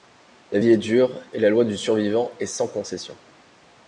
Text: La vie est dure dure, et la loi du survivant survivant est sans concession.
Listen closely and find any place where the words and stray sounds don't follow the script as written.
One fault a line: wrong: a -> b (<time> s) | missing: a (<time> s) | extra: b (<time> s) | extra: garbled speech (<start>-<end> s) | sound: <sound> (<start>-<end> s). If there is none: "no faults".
missing: dure (1.1 s)
missing: survivant (2.3 s)